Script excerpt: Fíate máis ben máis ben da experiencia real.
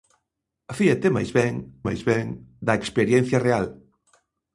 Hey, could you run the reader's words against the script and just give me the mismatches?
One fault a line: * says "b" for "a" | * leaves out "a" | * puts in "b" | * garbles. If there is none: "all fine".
all fine